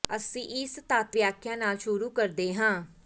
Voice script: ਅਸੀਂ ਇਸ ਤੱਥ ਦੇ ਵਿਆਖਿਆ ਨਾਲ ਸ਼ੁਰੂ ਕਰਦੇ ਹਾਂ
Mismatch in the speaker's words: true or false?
true